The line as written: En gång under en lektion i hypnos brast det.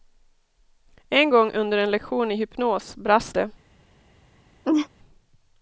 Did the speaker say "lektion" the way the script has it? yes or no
yes